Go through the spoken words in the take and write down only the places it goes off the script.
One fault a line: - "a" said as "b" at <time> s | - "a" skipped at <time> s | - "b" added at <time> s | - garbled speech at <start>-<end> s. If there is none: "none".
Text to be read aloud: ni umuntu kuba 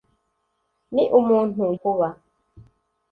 none